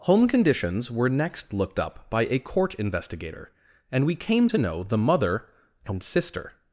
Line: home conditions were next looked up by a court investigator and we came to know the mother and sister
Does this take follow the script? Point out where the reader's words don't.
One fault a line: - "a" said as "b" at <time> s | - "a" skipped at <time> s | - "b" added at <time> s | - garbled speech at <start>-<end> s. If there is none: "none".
none